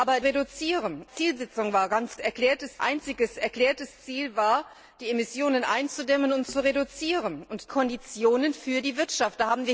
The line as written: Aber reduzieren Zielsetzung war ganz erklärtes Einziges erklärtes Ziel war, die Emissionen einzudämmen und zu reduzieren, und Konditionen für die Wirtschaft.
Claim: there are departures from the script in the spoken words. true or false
false